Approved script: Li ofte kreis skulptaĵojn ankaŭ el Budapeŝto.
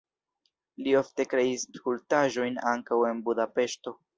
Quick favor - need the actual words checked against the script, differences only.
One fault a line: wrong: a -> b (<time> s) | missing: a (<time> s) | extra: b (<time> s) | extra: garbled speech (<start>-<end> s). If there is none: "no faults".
wrong: el -> en (3.1 s)